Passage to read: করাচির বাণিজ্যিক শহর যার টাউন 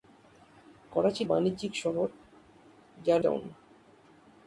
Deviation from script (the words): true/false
false